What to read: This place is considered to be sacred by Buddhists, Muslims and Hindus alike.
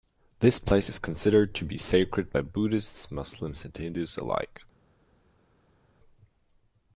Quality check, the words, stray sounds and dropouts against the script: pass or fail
pass